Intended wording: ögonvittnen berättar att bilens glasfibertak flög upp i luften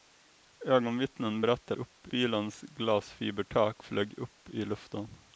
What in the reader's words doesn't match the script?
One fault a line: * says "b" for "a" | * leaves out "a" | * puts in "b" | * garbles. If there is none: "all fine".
* says "upp" for "att"